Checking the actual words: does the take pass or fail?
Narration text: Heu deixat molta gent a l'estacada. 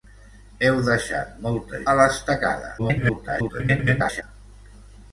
fail